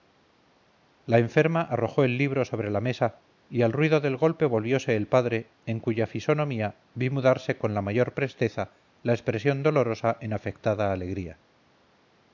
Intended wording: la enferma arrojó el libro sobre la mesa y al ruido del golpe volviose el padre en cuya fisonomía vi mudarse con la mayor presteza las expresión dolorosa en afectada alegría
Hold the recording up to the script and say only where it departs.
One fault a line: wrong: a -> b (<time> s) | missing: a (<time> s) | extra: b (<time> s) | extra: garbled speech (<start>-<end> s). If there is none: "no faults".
wrong: las -> la (9.0 s)